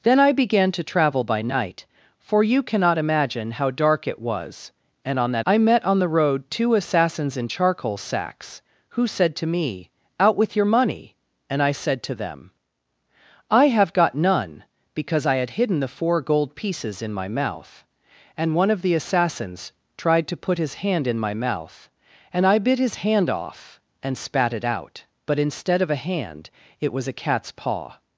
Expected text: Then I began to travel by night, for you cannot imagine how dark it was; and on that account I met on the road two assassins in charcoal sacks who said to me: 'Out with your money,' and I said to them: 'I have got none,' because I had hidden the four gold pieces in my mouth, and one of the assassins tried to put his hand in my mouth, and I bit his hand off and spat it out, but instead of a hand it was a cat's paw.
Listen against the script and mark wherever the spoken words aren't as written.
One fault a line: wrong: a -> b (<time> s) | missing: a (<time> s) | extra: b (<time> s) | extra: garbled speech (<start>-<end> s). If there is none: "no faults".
missing: account (5.5 s)